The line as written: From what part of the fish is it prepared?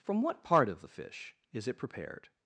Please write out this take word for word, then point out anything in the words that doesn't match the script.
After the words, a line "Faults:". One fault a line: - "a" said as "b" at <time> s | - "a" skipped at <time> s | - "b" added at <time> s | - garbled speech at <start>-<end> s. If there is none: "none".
From what part of the fish is it prepared?
Faults:
none